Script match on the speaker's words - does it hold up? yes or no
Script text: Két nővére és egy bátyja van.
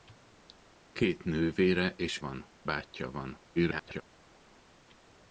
no